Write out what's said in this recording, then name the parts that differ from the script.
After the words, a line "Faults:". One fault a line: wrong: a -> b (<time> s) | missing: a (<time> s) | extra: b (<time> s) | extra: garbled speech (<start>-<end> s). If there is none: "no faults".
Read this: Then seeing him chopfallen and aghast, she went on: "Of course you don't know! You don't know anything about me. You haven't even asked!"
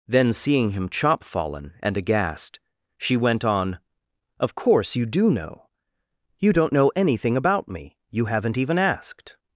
Then seeing him chopfallen and aghast, she went on: "Of course you do know! You don't know anything about me. You haven't even asked!"
Faults:
wrong: don't -> do (5.0 s)